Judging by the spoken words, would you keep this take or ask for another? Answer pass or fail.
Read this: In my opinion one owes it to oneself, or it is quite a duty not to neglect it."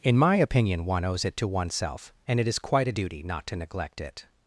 fail